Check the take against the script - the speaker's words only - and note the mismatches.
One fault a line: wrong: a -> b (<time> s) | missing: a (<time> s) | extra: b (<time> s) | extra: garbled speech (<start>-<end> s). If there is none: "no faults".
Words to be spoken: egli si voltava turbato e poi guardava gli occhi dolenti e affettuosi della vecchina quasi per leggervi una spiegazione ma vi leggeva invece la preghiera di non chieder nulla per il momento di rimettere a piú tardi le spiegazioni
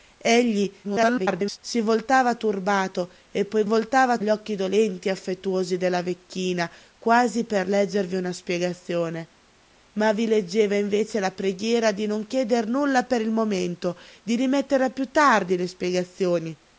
extra: garbled speech (0.8-1.6 s)
wrong: guardava -> voltava (3.6 s)